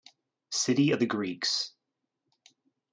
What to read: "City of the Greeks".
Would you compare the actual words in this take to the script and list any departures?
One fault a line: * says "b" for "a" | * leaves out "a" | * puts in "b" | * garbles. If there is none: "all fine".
all fine